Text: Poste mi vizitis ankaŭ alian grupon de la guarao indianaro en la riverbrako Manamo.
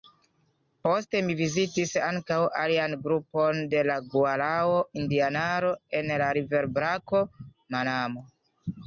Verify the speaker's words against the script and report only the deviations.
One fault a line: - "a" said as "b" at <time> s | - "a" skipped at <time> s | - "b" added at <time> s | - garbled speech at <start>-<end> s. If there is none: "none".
none